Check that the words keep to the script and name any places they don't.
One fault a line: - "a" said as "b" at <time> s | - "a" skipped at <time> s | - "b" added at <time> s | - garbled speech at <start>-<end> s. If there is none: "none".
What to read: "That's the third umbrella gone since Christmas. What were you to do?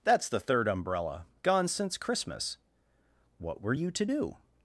none